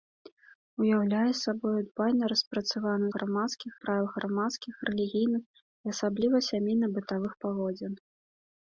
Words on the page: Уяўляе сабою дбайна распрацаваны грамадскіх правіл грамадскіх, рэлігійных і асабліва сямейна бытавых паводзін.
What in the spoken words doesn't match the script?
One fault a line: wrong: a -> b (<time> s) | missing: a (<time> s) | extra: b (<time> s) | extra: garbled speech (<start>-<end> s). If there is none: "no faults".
no faults